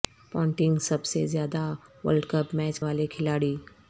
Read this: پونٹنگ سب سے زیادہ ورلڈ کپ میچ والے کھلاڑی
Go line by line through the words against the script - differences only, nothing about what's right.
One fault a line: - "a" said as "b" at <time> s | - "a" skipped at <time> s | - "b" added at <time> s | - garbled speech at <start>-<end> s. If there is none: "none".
none